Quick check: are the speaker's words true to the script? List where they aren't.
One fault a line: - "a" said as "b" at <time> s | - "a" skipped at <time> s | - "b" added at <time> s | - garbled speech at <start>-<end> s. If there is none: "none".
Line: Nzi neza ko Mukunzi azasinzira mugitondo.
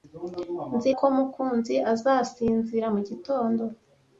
- "neza" skipped at 0.9 s